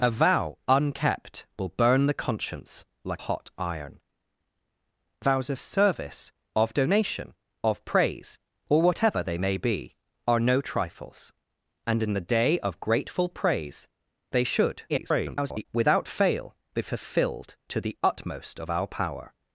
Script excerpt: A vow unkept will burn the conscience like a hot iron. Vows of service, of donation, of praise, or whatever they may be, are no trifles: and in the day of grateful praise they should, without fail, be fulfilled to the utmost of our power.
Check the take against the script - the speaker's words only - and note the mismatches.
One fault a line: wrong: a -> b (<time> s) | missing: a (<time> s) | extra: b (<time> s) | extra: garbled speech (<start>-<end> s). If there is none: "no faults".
missing: a (3.2 s)
extra: garbled speech (14.9-15.7 s)